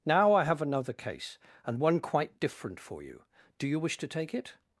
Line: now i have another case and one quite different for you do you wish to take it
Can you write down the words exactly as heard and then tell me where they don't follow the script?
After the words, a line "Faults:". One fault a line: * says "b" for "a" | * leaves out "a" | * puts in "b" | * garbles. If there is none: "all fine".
now i have another case and one quite different for you do you wish to take it
Faults:
all fine